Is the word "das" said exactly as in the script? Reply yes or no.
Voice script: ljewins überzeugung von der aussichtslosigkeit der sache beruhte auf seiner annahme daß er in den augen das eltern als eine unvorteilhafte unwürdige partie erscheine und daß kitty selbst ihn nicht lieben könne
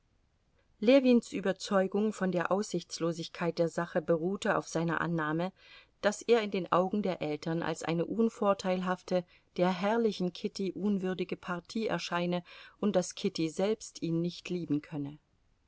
no